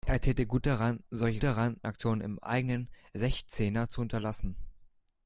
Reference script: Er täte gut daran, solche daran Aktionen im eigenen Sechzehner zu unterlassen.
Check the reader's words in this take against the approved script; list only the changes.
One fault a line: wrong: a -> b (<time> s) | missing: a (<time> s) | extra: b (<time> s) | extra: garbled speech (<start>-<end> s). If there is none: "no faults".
no faults